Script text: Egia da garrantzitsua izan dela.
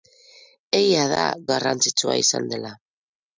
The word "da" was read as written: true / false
true